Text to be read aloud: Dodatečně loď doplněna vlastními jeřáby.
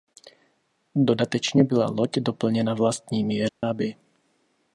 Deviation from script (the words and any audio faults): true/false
true